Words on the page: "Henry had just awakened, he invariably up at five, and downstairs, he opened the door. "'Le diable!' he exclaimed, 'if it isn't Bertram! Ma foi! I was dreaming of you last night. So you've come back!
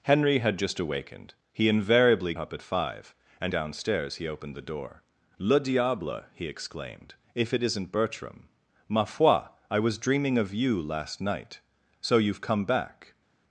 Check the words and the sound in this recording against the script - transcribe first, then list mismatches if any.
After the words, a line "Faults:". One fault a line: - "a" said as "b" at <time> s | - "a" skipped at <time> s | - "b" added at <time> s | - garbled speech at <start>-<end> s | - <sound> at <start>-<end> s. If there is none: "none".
"Henry had just awakened, he invariably up at five, and downstairs, he opened the door. "'Le diable!' he exclaimed, 'if it isn't Bertram! Ma foi! I was dreaming of you last night. So you've come back!
Faults:
none